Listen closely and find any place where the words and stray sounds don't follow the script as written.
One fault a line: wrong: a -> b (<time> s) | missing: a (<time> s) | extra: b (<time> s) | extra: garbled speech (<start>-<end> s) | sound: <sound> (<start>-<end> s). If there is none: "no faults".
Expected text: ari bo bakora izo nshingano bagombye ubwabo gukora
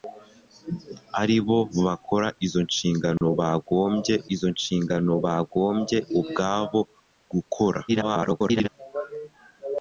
sound: dropout (3.2-3.2 s)
extra: izo nshingano bagombye (4.3 s)
extra: garbled speech (7.9-8.7 s)